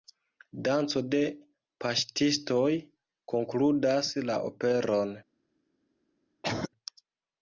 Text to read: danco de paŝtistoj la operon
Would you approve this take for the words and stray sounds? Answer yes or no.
no